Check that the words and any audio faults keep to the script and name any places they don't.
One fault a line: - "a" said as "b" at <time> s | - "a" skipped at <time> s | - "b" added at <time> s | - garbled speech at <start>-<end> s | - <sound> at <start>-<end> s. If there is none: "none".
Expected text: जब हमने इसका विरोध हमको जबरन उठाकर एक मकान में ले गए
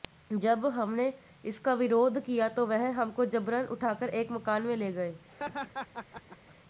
- "किया तो वह" added at 2.2 s
- laugh at 5.3-6.6 s